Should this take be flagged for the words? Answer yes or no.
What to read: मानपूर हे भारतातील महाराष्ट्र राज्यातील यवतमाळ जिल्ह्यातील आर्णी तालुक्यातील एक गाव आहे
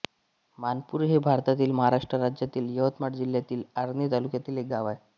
no